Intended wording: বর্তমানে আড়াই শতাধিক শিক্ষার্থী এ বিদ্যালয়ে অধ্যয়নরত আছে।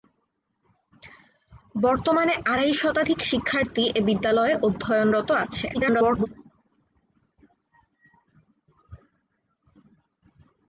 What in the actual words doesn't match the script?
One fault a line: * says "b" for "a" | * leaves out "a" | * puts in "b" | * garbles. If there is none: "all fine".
* garbles